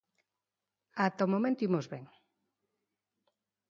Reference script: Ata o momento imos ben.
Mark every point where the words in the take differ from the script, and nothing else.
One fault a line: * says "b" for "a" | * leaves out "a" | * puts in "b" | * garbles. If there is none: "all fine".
all fine